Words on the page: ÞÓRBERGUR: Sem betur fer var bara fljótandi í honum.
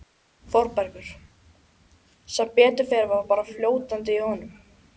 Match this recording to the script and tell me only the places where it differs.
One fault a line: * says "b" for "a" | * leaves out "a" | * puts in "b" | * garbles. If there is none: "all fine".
all fine